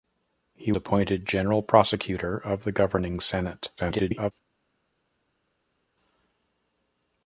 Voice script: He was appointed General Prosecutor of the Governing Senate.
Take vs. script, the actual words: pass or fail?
fail